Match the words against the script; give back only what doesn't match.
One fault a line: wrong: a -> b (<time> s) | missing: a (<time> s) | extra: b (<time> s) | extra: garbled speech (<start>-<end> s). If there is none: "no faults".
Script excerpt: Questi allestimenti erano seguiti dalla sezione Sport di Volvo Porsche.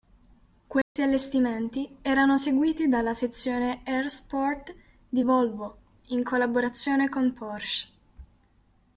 extra: R (3.8 s)
extra: in collaborazione con (6.1 s)